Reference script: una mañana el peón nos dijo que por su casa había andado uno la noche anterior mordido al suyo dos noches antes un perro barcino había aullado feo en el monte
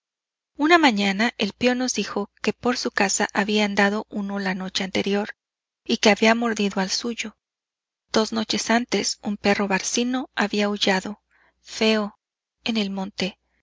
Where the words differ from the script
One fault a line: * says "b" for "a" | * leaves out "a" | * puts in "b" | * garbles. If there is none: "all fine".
* puts in "y que había"